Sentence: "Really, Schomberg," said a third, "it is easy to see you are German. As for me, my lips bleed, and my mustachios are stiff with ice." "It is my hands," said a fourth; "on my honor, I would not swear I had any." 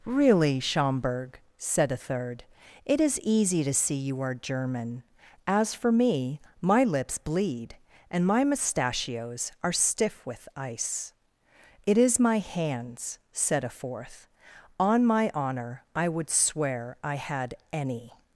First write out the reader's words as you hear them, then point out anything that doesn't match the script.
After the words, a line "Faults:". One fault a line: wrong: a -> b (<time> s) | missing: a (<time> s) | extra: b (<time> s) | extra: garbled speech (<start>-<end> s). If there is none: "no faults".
"Really, Schomberg," said a third, "it is easy to see you are German. As for me, my lips bleed, and my mustachios are stiff with ice." "It is my hands," said a fourth; "on my honor, I would swear I had any."
Faults:
missing: not (16.3 s)